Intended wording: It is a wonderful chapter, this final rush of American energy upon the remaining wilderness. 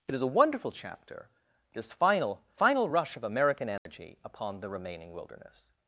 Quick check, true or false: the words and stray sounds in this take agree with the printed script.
false